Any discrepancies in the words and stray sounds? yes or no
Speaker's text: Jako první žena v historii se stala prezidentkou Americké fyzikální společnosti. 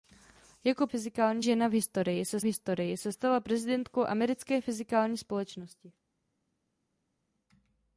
yes